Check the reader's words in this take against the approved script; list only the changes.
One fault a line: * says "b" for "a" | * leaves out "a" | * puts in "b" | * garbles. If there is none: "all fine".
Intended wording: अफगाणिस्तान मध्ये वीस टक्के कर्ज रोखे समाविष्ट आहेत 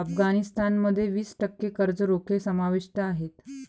all fine